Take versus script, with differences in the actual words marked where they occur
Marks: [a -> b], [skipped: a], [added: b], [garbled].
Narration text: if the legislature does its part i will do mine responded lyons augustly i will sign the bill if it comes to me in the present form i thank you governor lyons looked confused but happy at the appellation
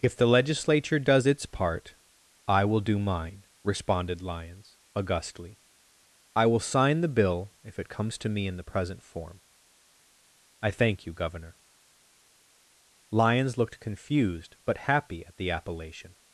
if the legislature does its part i will do mine responded lyons augustly i will sign the bill if it comes to me in the present form i thank you governor lyons looked confused but happy at the appellation